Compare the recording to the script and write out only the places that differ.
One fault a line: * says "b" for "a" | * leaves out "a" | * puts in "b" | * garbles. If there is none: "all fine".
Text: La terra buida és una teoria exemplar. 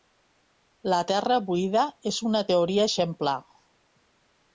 all fine